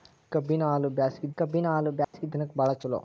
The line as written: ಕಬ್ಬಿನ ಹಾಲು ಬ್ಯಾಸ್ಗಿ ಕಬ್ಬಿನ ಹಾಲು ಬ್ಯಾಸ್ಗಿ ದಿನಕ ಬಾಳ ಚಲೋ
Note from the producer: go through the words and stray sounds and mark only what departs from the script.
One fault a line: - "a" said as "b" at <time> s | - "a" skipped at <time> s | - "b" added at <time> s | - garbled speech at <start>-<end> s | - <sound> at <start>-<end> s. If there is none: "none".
- dropout at 2.0-2.1 s